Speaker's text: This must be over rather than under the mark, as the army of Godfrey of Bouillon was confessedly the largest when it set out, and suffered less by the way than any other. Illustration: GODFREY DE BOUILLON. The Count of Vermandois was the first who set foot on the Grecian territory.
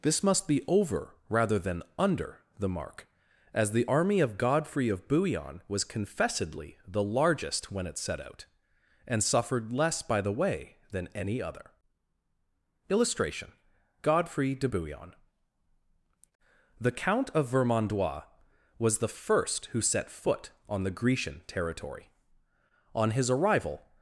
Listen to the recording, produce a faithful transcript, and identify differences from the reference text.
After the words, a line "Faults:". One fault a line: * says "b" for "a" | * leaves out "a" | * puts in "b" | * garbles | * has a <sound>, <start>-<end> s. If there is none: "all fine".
This must be over rather than under the mark, as the army of Godfrey of Bouillon was confessedly the largest when it set out, and suffered less by the way than any other. Illustration: GODFREY DE BOUILLON. The Count of Vermandois was the first who set foot on the Grecian territory. On his arrival
Faults:
* puts in "On his arrival"